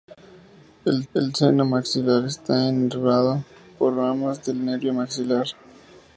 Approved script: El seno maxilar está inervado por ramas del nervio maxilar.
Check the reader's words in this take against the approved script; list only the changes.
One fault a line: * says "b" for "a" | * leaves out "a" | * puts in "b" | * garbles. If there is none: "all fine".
* puts in "el"